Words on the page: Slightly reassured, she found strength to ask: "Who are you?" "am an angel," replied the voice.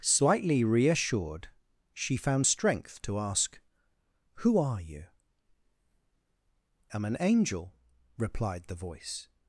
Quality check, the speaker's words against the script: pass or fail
pass